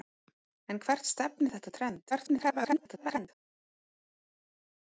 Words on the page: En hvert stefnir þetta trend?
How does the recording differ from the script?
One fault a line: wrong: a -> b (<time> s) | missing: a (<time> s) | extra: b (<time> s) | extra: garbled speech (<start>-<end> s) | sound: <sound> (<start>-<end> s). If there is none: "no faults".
extra: garbled speech (2.1-3.3 s)